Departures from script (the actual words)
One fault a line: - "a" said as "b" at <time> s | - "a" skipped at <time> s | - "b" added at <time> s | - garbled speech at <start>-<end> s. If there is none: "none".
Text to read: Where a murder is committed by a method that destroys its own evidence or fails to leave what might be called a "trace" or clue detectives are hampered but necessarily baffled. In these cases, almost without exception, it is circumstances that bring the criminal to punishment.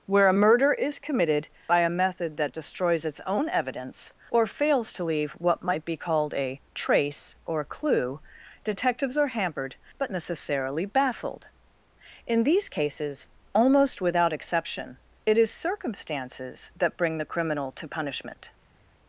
none